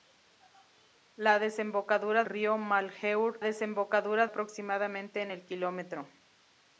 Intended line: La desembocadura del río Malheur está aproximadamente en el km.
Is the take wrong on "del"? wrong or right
wrong